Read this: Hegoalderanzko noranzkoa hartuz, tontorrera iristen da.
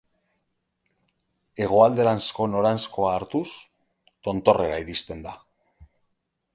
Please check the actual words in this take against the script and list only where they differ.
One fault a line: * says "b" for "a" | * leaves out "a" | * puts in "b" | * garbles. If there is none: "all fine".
all fine